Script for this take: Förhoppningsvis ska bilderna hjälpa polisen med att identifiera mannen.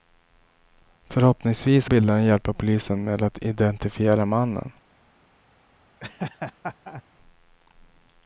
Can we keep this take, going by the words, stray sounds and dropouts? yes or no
no